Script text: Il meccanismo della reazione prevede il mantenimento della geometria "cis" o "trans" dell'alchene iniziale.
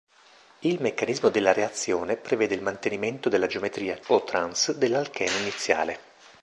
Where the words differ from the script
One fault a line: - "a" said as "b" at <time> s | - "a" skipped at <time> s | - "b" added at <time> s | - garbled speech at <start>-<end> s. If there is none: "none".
- "cis" skipped at 4.0 s